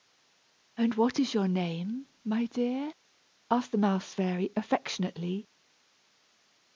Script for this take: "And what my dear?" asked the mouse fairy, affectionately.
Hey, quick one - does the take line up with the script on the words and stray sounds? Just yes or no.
no